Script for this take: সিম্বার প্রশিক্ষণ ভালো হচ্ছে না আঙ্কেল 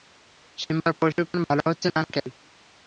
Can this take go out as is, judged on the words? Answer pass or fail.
pass